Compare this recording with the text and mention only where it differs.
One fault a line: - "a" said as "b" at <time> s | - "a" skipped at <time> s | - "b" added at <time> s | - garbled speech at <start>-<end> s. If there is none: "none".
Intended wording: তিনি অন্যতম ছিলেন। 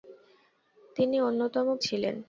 none